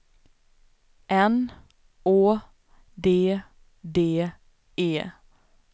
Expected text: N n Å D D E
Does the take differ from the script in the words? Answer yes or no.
yes